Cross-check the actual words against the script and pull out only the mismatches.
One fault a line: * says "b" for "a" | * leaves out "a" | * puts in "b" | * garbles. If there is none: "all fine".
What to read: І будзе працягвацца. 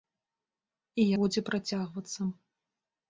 all fine